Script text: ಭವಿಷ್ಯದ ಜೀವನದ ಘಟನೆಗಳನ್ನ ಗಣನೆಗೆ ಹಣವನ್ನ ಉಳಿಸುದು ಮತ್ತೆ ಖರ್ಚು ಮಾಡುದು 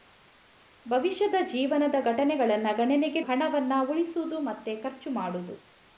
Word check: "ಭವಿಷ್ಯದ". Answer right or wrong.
right